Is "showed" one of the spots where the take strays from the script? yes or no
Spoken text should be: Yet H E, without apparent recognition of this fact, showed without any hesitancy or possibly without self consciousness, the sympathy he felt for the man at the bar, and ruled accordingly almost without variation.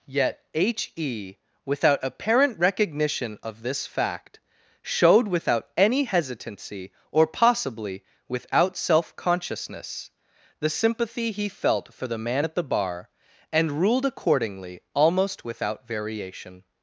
no